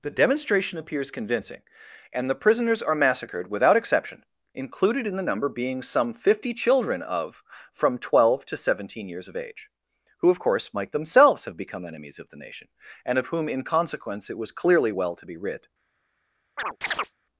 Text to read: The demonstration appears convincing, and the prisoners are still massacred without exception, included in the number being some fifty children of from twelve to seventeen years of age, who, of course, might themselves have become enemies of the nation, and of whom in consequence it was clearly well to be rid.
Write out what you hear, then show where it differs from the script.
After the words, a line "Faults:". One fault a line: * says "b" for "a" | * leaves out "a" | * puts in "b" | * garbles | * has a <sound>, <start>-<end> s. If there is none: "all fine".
The demonstration appears convincing, and the prisoners are massacred without exception, included in the number being some fifty children of from twelve to seventeen years of age, who, of course, might themselves have become enemies of the nation, and of whom in consequence it was clearly well to be rid.
Faults:
* leaves out "still"
* has a chirp, 16.6-17.1 s